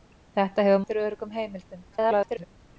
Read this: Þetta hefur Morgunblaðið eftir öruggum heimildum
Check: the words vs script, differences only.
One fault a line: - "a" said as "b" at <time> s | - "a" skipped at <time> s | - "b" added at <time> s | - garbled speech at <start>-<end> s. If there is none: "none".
- "Morgunblaðið" skipped at 0.8 s
- garbled speech at 1.9-2.5 s